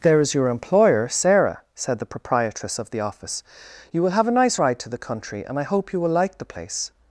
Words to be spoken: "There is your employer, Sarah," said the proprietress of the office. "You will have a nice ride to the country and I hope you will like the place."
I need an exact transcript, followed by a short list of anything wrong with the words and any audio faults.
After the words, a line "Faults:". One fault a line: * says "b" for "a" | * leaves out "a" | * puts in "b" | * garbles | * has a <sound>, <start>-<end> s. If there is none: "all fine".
"There is your employer, Sarah," said the proprietress of the office. "You will have a nice ride to the country and I hope you will like the place."
Faults:
all fine